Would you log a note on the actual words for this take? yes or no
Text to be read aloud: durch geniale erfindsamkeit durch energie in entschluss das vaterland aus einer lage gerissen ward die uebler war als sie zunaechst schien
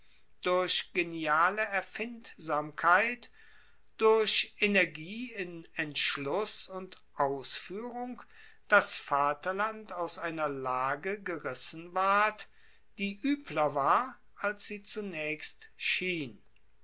yes